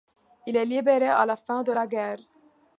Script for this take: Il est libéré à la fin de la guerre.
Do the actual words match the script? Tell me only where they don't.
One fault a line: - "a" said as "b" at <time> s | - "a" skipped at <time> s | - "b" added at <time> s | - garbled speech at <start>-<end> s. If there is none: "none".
none